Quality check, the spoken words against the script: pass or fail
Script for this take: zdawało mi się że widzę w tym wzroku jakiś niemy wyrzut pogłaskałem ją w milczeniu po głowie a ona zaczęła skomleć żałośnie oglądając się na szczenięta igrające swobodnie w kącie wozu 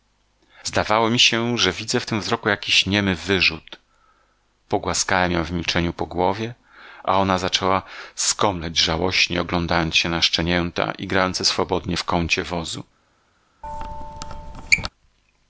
pass